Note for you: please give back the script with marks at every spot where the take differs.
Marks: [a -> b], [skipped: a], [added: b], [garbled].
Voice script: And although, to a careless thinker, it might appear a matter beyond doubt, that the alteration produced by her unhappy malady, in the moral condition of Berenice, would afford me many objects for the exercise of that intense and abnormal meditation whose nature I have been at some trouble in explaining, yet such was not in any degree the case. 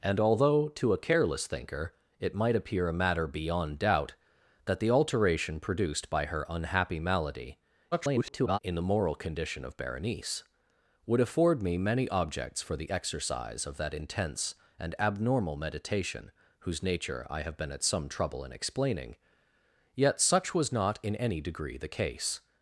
And although, to a careless thinker, it might appear a matter beyond doubt, that the alteration produced by her unhappy malady, [garbled] in the moral condition of Berenice, would afford me many objects for the exercise of that intense and abnormal meditation whose nature I have been at some trouble in explaining, yet such was not in any degree the case.